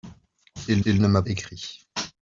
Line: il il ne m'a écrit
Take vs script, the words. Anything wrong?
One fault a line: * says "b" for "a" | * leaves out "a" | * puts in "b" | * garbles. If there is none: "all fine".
all fine